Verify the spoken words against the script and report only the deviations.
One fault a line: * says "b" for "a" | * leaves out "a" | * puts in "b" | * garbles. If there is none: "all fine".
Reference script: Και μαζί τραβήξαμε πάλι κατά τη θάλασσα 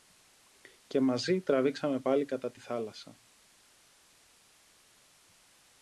all fine